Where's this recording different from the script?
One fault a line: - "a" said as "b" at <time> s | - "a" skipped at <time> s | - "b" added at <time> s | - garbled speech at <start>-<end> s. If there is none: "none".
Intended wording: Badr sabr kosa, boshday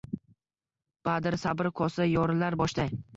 - "yorilar" added at 2.1 s